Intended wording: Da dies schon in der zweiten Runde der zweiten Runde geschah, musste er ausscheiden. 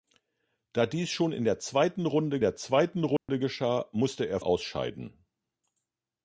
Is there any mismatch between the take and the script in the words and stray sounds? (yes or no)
yes